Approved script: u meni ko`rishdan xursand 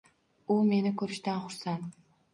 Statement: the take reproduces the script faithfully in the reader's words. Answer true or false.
true